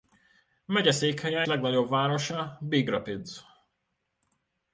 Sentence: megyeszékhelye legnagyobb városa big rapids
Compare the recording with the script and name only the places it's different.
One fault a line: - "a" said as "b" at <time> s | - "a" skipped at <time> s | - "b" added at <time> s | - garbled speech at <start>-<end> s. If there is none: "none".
none